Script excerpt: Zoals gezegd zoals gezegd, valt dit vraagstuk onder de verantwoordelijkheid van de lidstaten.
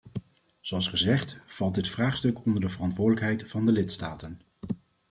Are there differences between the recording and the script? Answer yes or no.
yes